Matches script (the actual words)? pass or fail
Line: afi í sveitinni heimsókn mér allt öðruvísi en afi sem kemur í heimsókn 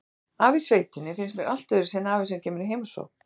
fail